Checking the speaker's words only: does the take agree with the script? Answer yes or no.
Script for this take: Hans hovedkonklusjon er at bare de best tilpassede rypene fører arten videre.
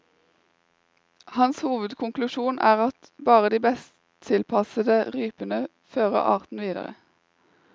yes